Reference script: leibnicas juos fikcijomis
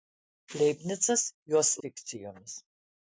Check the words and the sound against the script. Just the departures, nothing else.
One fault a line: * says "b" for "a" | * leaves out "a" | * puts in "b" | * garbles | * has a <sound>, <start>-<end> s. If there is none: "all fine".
all fine